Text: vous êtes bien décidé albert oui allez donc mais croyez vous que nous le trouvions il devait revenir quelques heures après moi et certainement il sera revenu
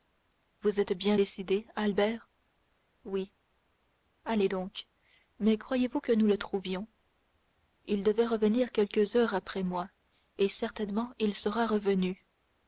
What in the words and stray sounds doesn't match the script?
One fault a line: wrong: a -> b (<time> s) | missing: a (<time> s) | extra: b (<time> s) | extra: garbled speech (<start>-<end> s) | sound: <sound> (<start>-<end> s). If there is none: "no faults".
no faults